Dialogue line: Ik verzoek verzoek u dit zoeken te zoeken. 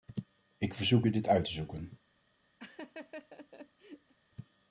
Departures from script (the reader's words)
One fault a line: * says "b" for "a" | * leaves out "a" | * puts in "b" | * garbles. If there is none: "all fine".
* leaves out "verzoek"
* says "uit" for "zoeken"